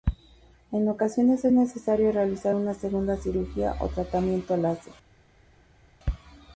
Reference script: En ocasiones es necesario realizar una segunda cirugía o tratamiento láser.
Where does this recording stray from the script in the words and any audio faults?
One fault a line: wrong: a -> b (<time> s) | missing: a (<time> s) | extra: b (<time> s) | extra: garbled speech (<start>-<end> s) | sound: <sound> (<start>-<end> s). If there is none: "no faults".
no faults